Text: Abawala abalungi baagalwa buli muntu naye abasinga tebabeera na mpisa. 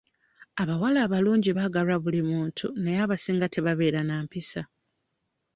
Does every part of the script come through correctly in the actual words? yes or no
yes